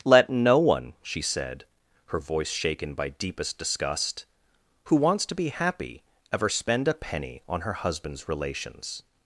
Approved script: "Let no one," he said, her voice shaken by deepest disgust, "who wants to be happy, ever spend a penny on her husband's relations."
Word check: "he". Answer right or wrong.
wrong